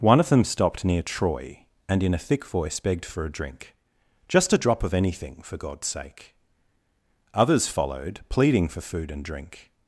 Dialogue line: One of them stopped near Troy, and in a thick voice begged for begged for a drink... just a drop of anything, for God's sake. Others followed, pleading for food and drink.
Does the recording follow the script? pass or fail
fail